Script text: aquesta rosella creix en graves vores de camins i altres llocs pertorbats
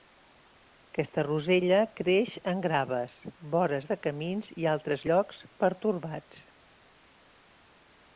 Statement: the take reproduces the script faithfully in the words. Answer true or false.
true